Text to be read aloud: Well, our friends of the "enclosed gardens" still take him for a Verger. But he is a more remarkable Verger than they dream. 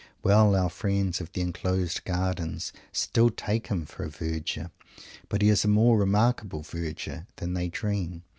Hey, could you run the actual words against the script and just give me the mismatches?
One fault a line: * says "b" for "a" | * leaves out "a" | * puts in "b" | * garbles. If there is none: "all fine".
all fine